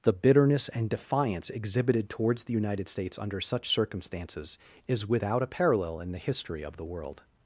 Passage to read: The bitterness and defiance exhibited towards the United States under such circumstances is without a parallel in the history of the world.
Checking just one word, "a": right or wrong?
right